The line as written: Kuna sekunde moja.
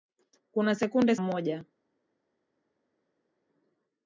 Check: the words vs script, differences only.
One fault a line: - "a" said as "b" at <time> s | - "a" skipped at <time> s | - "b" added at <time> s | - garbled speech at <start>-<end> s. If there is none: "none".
none